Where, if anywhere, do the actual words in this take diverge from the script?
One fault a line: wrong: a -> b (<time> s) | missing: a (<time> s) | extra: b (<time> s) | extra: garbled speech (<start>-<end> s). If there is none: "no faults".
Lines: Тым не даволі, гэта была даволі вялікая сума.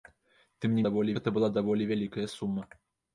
no faults